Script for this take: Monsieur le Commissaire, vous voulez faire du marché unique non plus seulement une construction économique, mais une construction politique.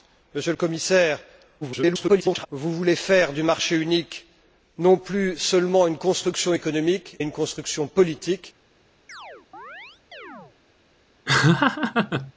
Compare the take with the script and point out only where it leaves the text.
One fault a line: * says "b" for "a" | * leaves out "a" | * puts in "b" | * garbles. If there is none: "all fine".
* garbles
* leaves out "mais"